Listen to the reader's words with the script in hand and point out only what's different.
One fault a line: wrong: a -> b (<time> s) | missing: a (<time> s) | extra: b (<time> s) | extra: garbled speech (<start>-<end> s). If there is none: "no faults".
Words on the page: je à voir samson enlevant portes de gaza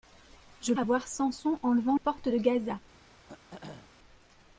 no faults